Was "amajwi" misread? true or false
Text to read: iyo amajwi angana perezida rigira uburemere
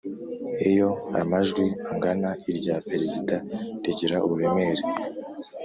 false